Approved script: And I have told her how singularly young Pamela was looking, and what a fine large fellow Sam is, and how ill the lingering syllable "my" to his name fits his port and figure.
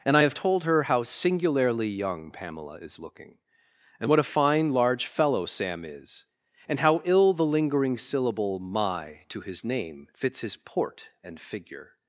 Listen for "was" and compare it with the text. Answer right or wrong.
wrong